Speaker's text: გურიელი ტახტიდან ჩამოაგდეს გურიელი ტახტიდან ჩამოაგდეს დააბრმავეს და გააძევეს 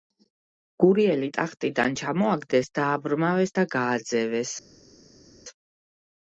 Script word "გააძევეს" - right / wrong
right